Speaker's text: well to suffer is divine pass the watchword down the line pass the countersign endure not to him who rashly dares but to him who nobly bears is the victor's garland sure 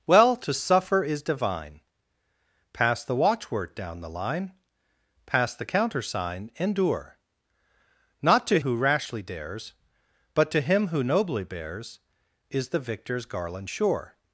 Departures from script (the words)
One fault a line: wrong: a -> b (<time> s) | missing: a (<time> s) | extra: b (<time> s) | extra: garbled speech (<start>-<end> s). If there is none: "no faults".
missing: him (8.6 s)